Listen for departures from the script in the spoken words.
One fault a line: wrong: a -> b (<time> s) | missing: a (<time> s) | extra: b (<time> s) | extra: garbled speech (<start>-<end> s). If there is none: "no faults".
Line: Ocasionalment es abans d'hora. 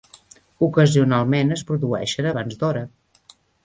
extra: produeixen (1.7 s)